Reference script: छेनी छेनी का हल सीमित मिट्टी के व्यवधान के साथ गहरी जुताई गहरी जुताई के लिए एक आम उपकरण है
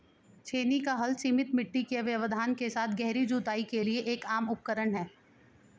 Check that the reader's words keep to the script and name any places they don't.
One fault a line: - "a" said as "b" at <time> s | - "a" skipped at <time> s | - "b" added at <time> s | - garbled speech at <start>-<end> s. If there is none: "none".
- "छेनी" skipped at 0.8 s
- "गहरी जुताई" skipped at 3.6 s